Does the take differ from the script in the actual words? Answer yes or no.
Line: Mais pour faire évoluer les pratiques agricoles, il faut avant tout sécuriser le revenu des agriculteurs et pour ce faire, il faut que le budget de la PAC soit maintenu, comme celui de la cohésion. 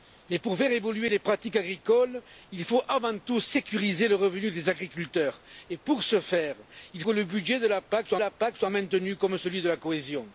yes